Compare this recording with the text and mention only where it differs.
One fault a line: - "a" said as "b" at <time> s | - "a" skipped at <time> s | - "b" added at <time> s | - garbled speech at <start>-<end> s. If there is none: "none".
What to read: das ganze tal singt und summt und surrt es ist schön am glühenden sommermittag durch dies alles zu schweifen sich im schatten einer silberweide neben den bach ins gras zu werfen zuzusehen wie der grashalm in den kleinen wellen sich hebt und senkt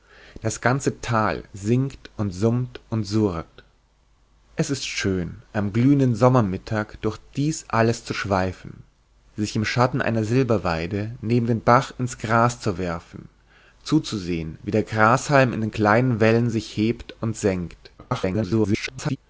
- garbled speech at 18.0-19.2 s